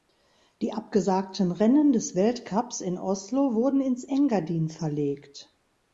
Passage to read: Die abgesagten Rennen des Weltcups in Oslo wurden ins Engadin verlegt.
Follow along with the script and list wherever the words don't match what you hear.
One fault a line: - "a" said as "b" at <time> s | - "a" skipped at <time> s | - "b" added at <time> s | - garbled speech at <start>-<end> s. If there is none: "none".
none